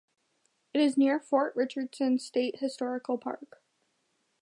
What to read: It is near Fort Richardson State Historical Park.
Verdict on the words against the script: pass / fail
pass